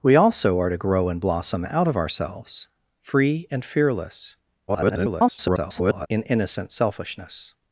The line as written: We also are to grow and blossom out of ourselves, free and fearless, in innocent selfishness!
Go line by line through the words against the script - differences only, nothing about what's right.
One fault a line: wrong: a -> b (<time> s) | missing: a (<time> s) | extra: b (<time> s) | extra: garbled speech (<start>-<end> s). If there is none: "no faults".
extra: garbled speech (4.7-6.1 s)